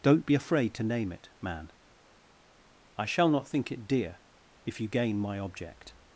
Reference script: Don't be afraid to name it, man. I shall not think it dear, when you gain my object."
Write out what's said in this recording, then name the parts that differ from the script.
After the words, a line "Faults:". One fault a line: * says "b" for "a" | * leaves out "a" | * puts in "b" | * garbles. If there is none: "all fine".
Don't be afraid to name it, man. I shall not think it dear, if you gain my object."
Faults:
* says "if" for "when"